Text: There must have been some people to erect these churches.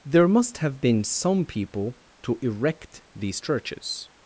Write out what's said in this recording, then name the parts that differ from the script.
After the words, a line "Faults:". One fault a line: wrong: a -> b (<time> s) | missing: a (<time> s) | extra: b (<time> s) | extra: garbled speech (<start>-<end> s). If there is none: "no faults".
There must have been some people to erect these churches.
Faults:
no faults